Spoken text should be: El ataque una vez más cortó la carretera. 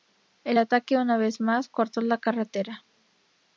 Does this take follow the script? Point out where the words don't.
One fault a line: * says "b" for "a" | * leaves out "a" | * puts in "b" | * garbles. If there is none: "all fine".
all fine